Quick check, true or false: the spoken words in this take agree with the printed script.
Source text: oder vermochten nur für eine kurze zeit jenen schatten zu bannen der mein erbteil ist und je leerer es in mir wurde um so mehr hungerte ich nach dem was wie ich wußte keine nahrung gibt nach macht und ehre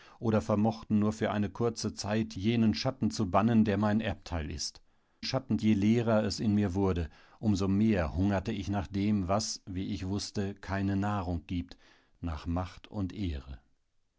false